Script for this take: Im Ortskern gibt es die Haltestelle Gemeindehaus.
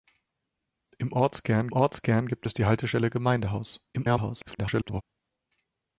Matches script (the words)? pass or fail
fail